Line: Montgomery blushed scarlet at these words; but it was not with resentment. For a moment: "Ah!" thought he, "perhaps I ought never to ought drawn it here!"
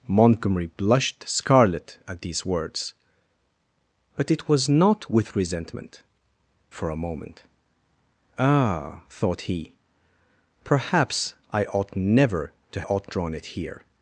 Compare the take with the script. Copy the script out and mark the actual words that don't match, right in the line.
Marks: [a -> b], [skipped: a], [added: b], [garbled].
Montgomery blushed scarlet at these words; but it was not with resentment. For a moment: "Ah!" thought he, "perhaps I ought never to ought drawn it here!"